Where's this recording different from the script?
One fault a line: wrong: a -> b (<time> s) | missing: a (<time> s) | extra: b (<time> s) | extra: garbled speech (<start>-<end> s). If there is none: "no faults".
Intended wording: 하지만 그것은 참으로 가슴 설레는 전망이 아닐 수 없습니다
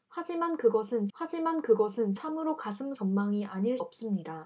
extra: 하지만 그것은 (1.1 s)
missing: 설레는 (2.9 s)
missing: 수 (3.8 s)